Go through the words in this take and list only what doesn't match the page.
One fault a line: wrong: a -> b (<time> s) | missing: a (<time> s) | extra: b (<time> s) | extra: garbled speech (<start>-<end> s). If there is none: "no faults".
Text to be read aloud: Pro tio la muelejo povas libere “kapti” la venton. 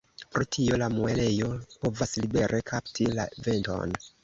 no faults